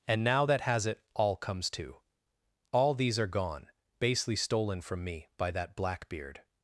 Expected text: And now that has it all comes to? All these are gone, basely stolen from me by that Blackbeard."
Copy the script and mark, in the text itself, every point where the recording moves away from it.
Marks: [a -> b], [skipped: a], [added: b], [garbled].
And now that has it all comes to? All these are gone, basely stolen from me by that Blackbeard."